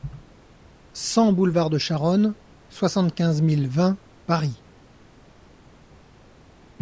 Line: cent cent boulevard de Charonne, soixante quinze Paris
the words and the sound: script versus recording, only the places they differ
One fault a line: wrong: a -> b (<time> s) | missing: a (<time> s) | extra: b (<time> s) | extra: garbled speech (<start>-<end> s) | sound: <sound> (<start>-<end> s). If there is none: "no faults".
missing: cent (1.3 s)
extra: mille vingt (3.4 s)